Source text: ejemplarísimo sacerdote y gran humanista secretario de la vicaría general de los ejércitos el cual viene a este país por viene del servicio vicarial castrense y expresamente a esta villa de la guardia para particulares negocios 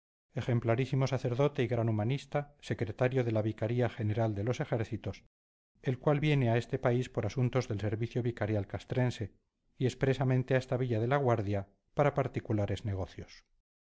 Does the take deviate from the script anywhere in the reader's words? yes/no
yes